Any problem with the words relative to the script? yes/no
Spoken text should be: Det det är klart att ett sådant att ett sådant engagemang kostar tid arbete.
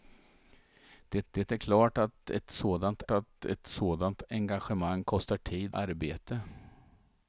no